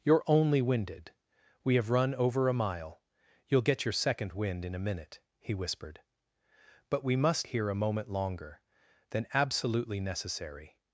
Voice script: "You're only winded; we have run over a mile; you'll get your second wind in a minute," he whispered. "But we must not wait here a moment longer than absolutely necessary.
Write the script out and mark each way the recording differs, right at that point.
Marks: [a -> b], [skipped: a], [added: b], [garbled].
"You're only winded; we have run over a mile; you'll get your second wind in a minute," he whispered. "But we must [skipped: not wait] here a moment longer than absolutely necessary.